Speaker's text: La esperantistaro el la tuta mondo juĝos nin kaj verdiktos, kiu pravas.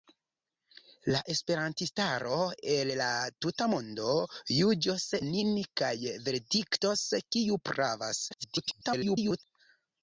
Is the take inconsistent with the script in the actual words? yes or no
yes